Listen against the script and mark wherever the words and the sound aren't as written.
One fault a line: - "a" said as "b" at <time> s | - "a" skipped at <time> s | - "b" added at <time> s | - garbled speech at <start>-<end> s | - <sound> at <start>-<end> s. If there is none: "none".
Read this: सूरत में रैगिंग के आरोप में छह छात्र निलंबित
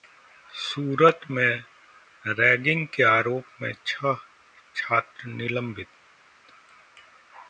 none